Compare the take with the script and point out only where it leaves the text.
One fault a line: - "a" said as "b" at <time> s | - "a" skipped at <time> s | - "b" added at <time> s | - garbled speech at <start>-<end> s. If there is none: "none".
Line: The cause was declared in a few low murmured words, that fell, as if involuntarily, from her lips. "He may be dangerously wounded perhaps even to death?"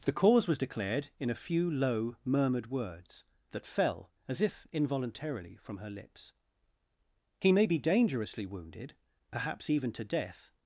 none